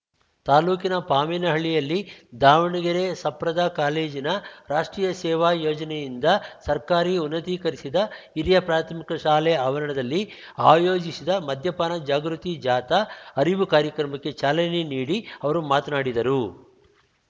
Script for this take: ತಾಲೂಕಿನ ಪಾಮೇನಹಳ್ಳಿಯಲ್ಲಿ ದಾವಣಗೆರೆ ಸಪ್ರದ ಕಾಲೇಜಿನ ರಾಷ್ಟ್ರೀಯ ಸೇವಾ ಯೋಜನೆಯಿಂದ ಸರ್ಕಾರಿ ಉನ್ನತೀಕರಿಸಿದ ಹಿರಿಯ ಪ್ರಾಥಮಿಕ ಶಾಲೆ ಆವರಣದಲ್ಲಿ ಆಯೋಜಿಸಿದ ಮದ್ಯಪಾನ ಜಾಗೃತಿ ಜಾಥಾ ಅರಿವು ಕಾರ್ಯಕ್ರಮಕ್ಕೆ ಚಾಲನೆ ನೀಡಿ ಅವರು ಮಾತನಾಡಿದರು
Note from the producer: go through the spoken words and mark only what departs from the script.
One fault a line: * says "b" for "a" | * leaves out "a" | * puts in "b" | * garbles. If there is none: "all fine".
all fine